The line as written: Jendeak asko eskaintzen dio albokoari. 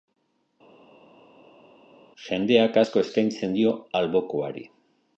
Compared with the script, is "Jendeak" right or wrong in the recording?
right